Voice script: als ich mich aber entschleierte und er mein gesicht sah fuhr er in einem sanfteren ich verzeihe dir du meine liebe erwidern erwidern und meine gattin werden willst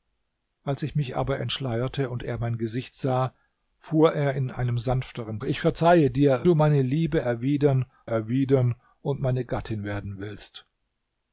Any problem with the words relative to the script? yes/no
no